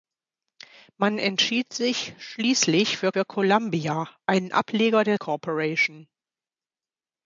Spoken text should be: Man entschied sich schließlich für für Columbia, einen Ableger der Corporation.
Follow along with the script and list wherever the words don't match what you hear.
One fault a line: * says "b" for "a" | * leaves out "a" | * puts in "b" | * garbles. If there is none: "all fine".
all fine